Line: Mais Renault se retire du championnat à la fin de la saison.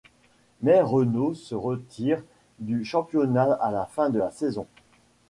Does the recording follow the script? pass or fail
pass